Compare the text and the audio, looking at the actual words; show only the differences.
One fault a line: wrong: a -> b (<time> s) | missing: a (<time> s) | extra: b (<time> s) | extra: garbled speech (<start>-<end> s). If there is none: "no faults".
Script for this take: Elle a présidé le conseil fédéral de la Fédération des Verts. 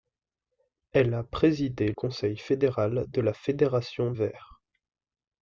missing: le (1.9 s)
missing: des (4.1 s)